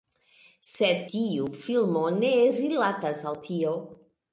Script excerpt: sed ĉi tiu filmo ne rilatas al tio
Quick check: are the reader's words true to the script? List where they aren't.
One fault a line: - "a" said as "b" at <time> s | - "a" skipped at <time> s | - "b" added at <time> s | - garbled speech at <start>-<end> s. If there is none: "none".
- "ĉi" skipped at 1.0 s